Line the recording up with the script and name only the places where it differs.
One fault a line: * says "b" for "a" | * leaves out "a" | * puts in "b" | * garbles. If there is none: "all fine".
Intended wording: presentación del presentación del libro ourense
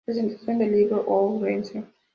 * leaves out "presentación del"